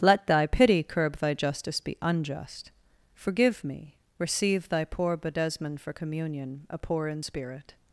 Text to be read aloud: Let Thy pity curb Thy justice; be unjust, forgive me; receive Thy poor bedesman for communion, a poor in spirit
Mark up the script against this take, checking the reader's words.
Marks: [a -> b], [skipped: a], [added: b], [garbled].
Let Thy pity curb Thy justice; be unjust, forgive me; receive Thy poor bedesman for communion, a poor in spirit